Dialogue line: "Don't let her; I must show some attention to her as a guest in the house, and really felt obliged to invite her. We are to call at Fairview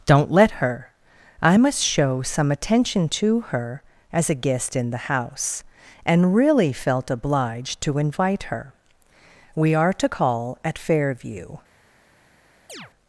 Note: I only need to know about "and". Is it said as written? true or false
true